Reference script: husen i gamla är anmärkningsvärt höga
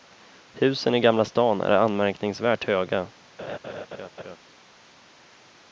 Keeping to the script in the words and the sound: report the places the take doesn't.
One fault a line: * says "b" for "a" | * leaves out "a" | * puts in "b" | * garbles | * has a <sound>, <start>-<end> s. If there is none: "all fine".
* puts in "stan"
* has a laugh, 3.4-4.4 s